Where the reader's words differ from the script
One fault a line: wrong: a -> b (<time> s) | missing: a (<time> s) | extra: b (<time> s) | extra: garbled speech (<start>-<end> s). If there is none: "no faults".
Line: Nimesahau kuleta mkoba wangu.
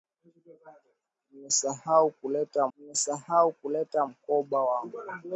extra: nimesahau kuleta (2.8 s)